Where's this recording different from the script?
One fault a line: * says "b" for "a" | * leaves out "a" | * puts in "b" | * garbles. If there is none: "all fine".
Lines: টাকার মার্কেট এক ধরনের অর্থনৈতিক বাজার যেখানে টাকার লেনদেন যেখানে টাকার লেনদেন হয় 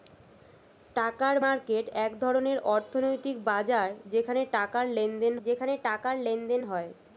all fine